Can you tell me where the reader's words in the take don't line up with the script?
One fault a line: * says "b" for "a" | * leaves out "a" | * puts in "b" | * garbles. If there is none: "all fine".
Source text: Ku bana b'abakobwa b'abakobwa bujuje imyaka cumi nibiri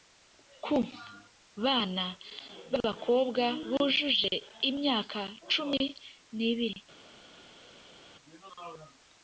* leaves out "b'abakobwa"